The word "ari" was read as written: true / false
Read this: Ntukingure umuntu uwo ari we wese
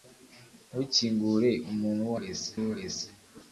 false